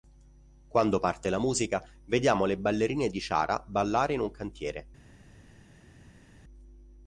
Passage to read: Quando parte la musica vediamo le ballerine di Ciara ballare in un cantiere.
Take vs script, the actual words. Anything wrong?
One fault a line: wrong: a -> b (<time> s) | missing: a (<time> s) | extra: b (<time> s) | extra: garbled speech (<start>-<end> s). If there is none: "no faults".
no faults